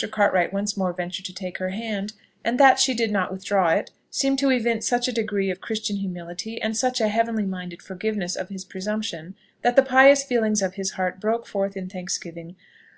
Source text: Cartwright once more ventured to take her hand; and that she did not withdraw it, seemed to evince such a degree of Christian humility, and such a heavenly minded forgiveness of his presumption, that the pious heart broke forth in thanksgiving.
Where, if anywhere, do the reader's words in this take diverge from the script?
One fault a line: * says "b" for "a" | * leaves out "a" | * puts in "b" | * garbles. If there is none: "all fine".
* puts in "feelings of his"